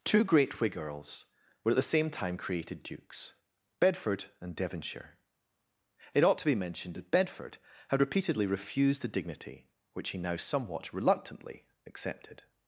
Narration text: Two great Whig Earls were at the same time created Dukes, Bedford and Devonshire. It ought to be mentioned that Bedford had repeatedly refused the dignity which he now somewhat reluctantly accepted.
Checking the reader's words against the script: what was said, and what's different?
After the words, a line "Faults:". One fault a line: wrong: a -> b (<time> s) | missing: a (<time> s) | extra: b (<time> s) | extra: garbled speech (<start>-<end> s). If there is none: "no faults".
Two great Whig Earls were at the same time created Dukes, Bedford and Devonshire. It ought to be mentioned that Bedford had repeatedly refused the dignity which he now somewhat reluctantly accepted.
Faults:
no faults